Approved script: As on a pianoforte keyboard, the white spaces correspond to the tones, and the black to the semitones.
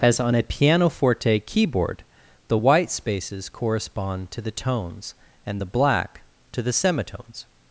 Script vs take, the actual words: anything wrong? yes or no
no